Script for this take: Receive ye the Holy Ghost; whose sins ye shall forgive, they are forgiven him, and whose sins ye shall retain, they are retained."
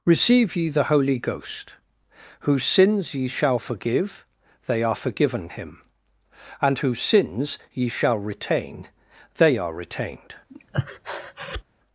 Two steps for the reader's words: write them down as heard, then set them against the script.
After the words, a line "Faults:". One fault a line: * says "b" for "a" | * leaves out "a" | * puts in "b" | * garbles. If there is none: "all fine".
Receive ye the Holy Ghost; whose sins ye shall forgive, they are forgiven him, and whose sins ye shall retain, they are retained."
Faults:
all fine